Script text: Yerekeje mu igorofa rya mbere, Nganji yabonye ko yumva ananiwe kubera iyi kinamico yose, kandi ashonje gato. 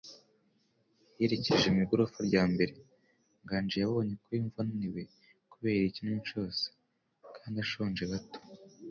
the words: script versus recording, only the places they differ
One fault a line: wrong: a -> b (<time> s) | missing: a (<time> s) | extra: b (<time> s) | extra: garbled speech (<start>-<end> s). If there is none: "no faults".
no faults